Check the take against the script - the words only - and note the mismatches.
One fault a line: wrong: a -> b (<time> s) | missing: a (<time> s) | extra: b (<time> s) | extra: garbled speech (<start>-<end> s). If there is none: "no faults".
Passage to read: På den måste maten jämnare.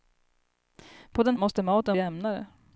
no faults